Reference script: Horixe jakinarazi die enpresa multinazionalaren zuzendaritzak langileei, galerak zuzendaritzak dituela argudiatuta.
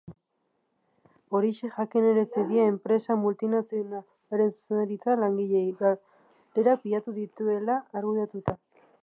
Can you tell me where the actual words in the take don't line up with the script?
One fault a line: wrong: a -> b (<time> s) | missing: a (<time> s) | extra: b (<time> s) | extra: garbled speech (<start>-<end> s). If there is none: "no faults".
wrong: zuzendaritzak -> pilatu (6.9 s)